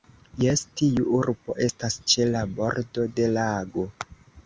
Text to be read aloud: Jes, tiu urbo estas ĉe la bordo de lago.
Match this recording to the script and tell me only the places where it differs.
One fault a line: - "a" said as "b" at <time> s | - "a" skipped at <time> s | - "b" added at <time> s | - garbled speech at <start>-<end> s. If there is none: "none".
none